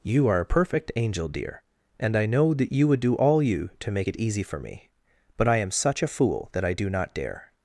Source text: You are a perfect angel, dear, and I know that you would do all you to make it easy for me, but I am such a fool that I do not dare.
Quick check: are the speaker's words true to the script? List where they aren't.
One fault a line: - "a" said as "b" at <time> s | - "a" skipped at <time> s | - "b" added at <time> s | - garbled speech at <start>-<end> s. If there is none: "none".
none